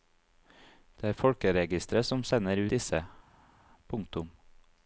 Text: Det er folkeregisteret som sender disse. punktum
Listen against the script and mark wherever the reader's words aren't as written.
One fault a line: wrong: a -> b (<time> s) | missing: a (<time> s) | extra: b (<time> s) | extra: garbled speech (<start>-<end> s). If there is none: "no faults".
no faults